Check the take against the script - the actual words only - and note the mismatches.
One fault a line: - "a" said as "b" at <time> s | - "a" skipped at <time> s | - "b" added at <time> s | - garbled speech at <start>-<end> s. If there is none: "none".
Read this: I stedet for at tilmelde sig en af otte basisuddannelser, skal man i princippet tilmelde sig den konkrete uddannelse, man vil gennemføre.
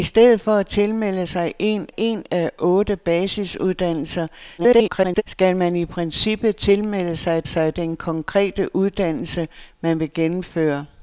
- "en" added at 2.0 s
- garbled speech at 4.6-5.2 s
- "sig" added at 7.4 s